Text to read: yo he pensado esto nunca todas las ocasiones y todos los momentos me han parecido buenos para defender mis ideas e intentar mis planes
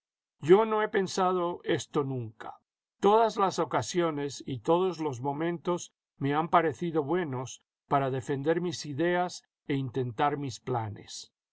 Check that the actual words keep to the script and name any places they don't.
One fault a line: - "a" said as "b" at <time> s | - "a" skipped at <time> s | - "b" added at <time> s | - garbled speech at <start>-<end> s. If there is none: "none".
- "no" added at 0.7 s